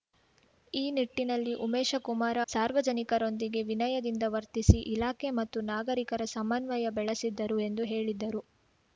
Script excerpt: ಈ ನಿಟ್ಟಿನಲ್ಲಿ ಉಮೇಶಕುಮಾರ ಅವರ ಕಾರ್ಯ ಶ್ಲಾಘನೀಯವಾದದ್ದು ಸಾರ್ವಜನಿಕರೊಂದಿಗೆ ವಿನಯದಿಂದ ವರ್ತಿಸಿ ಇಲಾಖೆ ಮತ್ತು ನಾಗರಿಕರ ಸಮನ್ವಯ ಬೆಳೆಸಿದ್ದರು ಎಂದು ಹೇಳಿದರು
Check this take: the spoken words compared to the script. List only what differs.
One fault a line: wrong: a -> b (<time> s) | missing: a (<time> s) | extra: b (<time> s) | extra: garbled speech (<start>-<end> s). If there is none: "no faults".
missing: ಅವರ ಕಾರ್ಯ ಶ್ಲಾಘನೀಯವಾದದ್ದು (2.4 s)